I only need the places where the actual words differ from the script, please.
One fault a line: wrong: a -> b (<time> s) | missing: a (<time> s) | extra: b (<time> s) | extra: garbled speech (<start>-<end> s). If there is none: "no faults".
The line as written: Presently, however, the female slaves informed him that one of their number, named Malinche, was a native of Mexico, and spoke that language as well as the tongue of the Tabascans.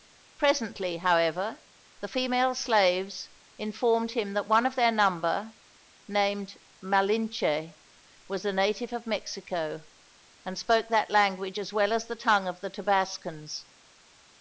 no faults